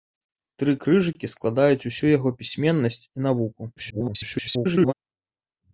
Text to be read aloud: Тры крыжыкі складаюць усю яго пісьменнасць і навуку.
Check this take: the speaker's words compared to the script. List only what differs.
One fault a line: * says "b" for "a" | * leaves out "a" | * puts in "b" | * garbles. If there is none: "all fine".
* garbles